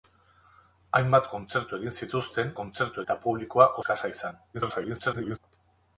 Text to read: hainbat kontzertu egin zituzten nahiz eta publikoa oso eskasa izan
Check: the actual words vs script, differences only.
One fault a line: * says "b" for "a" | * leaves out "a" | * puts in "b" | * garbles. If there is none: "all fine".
* says "kontzertu" for "nahiz"
* leaves out "oso"
* garbles